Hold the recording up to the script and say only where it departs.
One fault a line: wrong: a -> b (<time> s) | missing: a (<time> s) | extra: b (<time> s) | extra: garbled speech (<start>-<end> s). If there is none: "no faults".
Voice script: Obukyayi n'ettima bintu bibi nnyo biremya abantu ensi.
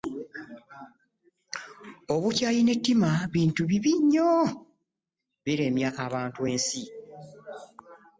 no faults